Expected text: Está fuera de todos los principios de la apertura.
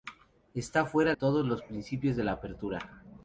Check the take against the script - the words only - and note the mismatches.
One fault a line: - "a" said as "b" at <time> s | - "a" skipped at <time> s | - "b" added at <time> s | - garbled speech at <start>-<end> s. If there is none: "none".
- "de" skipped at 1.1 s